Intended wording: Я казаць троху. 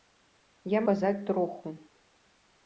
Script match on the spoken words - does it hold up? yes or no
yes